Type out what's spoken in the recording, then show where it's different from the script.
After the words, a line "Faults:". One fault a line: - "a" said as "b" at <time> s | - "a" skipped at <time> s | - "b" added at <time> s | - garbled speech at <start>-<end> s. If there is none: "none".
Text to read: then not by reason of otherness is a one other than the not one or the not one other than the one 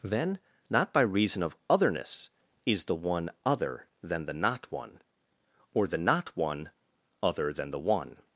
then not by reason of otherness is the one other than the not one or the not one other than the one
Faults:
- "a" said as "the" at 2.9 s